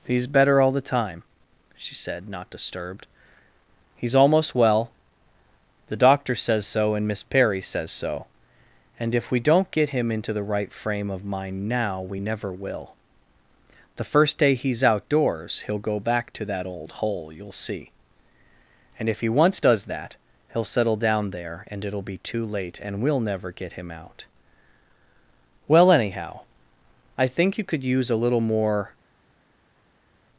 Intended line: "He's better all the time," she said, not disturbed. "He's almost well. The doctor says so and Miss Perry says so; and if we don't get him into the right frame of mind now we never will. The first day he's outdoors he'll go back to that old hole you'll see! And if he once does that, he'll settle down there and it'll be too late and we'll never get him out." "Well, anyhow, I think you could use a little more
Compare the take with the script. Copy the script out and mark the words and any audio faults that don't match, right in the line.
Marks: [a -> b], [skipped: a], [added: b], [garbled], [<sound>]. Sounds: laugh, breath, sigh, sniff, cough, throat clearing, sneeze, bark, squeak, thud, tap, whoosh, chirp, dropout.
"He's better all the time," she said, not disturbed. "He's almost well. The doctor says so and Miss Perry says so; and if we don't get him into the right frame of mind now we never will. The first day he's outdoors he'll go back to that old hole you'll see! And if he once does that, he'll settle down there and it'll be too late and we'll never get him out." "Well, anyhow, I think you could use a little more